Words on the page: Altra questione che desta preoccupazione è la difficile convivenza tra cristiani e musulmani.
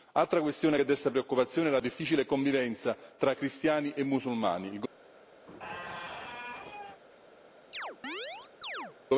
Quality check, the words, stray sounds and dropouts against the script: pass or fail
fail